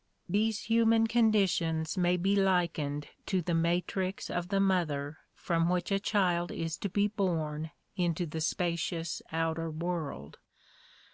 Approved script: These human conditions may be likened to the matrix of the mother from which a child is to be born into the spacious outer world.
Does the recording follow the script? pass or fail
pass